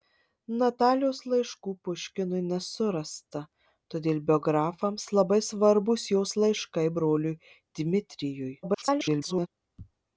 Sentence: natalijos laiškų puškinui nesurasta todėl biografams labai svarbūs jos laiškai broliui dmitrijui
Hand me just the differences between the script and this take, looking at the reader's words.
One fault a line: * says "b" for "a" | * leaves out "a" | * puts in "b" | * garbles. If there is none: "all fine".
* garbles